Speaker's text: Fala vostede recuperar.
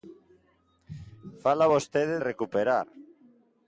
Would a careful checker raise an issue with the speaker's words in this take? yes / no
no